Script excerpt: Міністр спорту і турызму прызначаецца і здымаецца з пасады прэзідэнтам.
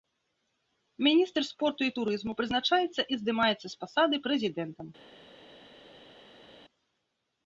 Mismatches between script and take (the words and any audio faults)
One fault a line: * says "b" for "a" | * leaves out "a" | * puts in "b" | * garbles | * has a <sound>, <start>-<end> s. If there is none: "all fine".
all fine